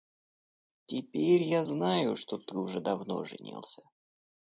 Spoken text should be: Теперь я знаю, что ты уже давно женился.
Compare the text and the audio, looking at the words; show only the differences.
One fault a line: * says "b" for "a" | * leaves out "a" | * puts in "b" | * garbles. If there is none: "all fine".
all fine